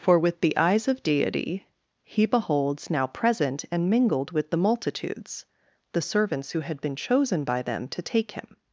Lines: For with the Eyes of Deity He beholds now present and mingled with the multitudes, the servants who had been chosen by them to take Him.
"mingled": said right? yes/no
yes